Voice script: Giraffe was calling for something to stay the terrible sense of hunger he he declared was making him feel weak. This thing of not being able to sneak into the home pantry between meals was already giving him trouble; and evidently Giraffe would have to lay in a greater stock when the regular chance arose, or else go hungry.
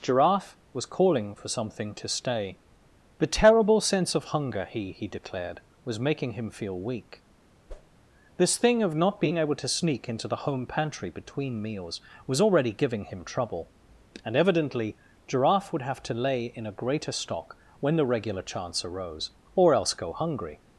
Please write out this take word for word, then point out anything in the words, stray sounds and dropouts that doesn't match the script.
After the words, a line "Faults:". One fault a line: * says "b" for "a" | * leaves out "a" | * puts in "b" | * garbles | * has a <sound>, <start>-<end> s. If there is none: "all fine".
Giraffe was calling for something to stay the terrible sense of hunger he he declared was making him feel weak. This thing of not being able to sneak into the home pantry between meals was already giving him trouble; and evidently Giraffe would have to lay in a greater stock when the regular chance arose, or else go hungry.
Faults:
* has a whoosh, 7.7-8.0 s